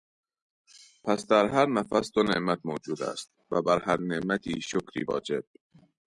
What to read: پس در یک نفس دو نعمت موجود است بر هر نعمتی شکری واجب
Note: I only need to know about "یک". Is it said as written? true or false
false